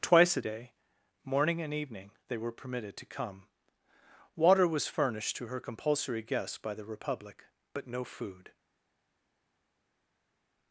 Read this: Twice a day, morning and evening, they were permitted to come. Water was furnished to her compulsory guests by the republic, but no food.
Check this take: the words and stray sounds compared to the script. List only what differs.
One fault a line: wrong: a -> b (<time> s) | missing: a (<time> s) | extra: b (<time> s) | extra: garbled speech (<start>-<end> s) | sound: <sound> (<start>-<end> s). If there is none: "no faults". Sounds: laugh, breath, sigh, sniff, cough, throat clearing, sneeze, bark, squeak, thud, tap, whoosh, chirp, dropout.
no faults